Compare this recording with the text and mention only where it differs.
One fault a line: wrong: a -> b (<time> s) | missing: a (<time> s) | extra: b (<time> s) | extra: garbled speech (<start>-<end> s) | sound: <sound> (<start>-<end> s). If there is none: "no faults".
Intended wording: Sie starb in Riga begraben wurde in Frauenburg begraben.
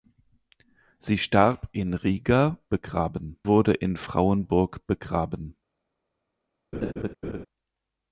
sound: laugh (6.7-7.5 s)